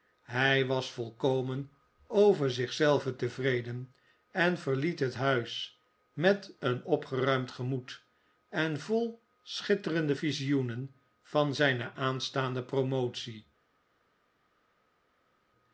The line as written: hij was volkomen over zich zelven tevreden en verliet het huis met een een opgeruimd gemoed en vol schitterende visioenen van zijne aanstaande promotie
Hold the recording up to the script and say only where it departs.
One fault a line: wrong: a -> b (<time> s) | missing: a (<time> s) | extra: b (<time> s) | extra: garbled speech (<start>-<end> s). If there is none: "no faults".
missing: een (6.8 s)